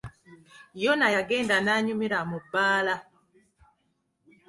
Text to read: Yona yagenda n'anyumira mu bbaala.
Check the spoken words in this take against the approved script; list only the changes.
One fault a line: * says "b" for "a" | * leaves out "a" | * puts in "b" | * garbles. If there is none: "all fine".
all fine